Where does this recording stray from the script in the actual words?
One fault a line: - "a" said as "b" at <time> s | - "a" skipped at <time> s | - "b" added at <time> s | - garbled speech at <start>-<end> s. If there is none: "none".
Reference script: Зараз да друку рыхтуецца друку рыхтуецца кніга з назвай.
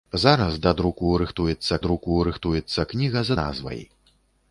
none